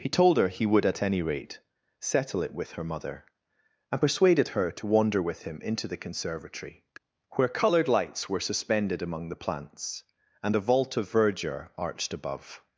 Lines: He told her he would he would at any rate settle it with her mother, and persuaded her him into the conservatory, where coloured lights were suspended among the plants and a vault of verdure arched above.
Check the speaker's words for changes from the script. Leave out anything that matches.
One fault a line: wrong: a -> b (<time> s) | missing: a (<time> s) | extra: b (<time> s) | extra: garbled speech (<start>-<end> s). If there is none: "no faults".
missing: he would (0.8 s)
extra: to wander with (4.7 s)